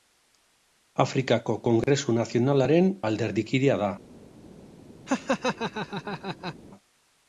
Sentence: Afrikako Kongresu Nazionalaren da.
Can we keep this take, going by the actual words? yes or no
no